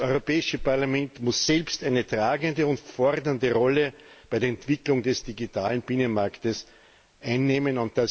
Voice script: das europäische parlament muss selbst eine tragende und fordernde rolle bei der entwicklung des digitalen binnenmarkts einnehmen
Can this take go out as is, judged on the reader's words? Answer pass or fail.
pass